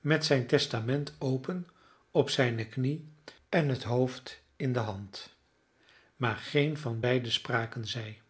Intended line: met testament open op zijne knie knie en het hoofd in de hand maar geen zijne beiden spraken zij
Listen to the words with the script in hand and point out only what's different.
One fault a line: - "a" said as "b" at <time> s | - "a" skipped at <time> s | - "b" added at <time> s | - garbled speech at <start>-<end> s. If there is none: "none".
- "zijn" added at 0.2 s
- "knie" skipped at 3.1 s
- "zijne" said as "van" at 6.8 s